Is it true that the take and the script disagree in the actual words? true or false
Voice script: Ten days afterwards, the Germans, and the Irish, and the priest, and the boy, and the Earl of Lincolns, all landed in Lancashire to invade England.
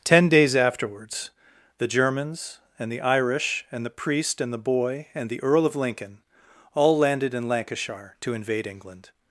true